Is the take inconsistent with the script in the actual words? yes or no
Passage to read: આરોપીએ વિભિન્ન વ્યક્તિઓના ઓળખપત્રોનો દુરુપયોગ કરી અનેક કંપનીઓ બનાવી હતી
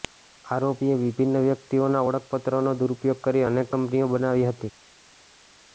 no